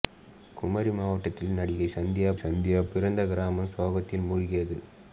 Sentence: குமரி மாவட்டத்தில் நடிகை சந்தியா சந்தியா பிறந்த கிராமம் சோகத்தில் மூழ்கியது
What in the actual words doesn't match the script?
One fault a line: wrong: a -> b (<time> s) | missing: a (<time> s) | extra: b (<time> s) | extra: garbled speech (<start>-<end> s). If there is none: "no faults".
no faults